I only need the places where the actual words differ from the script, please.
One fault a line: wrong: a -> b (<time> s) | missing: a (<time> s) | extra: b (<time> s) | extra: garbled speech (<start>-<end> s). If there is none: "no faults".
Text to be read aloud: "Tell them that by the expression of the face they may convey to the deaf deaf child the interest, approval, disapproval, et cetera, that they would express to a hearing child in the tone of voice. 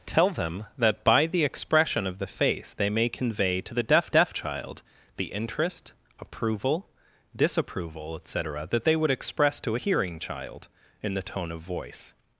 no faults